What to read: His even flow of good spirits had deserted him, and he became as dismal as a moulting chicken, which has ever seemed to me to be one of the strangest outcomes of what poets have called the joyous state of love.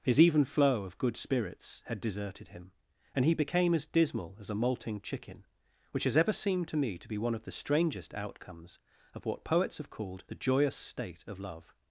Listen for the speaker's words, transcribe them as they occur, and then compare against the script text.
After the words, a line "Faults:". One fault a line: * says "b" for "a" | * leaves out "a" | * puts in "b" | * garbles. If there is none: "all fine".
His even flow of good spirits had deserted him, and he became as dismal as a moulting chicken, which has ever seemed to me to be one of the strangest outcomes of what poets have called the joyous state of love.
Faults:
all fine